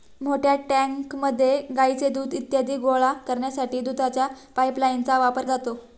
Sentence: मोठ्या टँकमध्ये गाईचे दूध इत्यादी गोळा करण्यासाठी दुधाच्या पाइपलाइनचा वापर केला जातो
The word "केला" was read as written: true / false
false